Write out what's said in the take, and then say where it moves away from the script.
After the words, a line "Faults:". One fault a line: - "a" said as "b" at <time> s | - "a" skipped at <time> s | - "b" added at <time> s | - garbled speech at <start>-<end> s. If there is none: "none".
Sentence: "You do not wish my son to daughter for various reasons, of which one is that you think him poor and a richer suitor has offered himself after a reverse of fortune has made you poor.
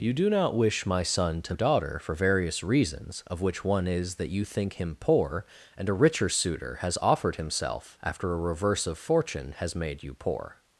"You do not wish my son to daughter for various reasons, of which one is that you think him poor and a richer suitor has offered himself after a reverse of fortune has made you poor.
Faults:
none